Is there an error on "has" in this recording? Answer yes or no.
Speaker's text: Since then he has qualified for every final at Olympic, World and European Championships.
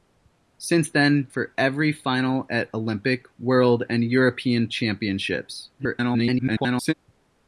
yes